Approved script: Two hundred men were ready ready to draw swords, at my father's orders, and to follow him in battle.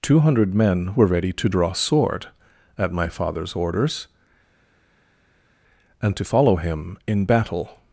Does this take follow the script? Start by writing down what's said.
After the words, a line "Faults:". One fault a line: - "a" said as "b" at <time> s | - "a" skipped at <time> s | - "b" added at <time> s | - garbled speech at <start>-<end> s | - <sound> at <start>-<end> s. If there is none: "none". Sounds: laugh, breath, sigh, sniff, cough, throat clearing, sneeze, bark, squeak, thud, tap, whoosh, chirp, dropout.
Two hundred men were ready to draw sword, at my father's orders, and to follow him in battle.
Faults:
- "ready" skipped at 1.3 s
- "swords" said as "sword" at 1.7 s